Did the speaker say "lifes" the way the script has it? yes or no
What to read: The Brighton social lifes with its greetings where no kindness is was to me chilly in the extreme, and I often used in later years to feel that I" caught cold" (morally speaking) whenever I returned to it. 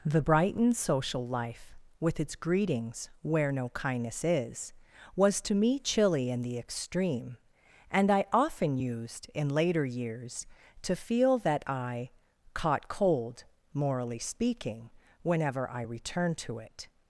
no